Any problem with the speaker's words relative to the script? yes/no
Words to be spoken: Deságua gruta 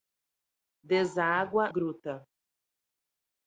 no